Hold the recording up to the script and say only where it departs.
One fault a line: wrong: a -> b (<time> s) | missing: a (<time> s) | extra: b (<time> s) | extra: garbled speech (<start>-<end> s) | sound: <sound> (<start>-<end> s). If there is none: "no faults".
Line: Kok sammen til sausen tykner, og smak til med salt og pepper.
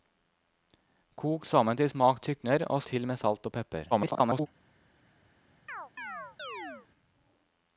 wrong: sausen -> smak (1.9 s)
missing: smak (2.8 s)
extra: garbled speech (3.9-4.5 s)
sound: chirp (5.7-6.9 s)